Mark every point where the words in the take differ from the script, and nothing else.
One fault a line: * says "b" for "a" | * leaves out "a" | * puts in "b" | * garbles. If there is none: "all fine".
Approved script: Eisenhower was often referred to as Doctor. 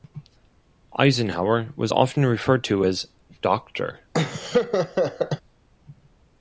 all fine